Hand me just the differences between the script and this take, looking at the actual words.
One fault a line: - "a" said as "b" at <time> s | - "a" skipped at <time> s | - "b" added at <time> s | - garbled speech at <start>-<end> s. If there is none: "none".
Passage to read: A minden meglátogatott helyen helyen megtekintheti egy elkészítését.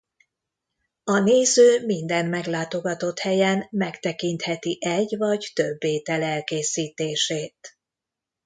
- "néző" added at 1.2 s
- "helyen" skipped at 3.7 s
- "vagy több étel" added at 5.2 s